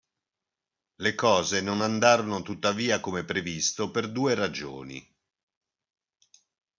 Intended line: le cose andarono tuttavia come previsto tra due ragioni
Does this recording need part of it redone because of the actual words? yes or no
yes